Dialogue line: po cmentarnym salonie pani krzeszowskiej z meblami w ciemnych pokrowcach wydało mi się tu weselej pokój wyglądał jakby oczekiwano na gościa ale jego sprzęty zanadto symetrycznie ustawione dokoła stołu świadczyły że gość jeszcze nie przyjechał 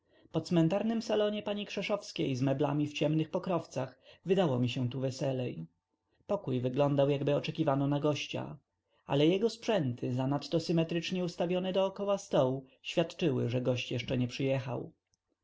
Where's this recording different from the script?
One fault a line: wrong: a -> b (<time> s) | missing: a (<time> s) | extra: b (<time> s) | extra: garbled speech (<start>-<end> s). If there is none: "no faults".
no faults